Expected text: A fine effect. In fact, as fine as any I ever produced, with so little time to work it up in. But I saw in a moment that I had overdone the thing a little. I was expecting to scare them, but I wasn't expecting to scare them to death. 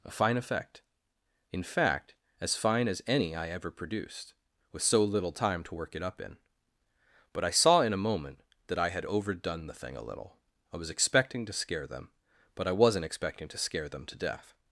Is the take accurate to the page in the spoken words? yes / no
yes